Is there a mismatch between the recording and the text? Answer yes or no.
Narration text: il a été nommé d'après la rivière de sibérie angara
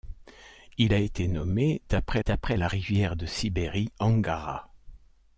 yes